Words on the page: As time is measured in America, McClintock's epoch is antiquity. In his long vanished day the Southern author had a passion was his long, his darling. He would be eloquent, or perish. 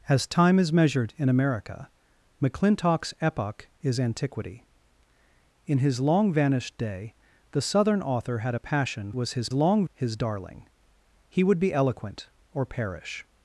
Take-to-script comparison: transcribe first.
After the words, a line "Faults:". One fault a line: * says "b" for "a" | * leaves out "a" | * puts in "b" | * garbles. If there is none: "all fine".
As time is measured in America, McClintock's epoch is antiquity. In his long vanished day the Southern author had a passion was his long, his darling. He would be eloquent, or perish.
Faults:
all fine